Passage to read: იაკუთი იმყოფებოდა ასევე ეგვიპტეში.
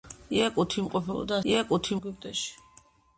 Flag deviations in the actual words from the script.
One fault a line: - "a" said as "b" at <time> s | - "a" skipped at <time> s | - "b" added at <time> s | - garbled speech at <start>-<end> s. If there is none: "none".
- "ასევე" said as "იაკუთი" at 1.5 s